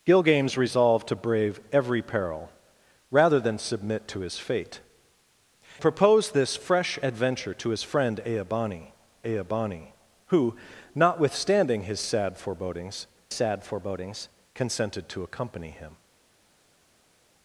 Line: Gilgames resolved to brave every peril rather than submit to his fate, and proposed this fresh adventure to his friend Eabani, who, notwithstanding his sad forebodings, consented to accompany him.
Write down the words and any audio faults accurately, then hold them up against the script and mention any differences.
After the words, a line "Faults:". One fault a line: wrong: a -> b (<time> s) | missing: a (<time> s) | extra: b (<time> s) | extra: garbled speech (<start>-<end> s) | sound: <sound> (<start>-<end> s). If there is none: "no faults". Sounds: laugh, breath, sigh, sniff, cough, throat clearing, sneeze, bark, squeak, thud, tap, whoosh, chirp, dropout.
Gilgames resolved to brave every peril rather than submit to his fate, proposed this fresh adventure to his friend Eabani Eabani, who, notwithstanding his sad forebodings sad forebodings, consented to accompany him.
Faults:
missing: and (4.8 s)
extra: Eabani (9.2 s)
extra: sad forebodings (13.3 s)